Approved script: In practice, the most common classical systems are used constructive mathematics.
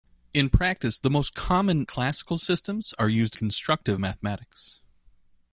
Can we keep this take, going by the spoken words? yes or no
yes